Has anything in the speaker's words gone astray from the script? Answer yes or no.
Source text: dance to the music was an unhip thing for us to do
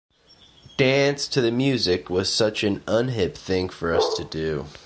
yes